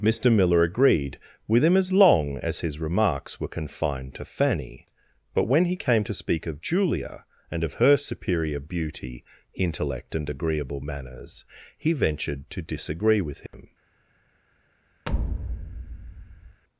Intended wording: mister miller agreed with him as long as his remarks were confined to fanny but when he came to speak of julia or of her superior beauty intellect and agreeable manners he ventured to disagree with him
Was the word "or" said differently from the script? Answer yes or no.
yes